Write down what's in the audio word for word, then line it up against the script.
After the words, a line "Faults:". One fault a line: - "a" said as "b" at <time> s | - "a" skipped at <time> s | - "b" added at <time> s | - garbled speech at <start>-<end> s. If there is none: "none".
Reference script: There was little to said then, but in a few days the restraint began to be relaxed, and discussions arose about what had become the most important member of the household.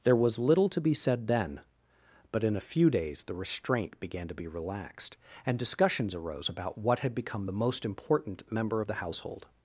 There was little to be said then, but in a few days the restraint began to be relaxed, and discussions arose about what had become the most important member of the household.
Faults:
- "be" added at 0.8 s